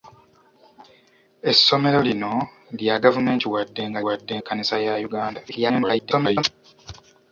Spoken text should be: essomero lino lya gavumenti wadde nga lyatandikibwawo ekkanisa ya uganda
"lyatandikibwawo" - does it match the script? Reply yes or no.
no